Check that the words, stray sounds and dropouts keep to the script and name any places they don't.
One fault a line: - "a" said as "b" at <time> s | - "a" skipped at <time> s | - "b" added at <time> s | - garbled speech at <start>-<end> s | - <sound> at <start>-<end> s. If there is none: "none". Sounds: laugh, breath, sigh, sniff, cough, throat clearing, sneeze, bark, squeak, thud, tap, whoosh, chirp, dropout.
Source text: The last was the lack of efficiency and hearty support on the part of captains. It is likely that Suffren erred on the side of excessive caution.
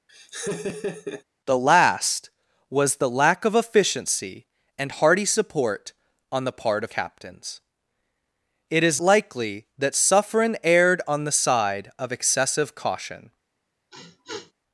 - laugh at 0.1-1.2 s
- sniff at 13.9-14.5 s